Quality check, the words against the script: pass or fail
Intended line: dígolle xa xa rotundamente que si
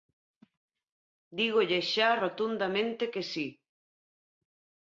fail